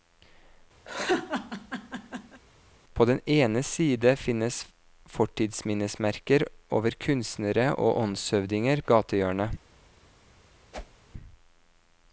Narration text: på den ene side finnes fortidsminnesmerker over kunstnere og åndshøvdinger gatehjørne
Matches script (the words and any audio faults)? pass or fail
fail